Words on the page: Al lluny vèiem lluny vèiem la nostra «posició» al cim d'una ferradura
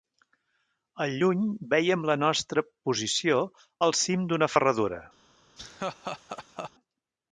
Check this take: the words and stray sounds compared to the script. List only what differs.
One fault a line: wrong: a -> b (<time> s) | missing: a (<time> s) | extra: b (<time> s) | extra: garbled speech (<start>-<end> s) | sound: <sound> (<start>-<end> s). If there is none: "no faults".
missing: lluny vèiem (2.1 s)
sound: laugh (5.6-6.7 s)